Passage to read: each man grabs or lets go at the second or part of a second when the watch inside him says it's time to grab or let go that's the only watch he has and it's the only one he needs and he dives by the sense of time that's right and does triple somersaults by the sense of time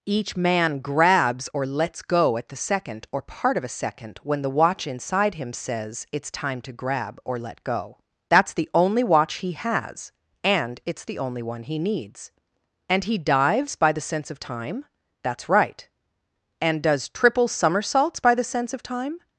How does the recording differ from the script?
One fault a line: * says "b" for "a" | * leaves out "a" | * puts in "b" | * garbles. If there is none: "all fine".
all fine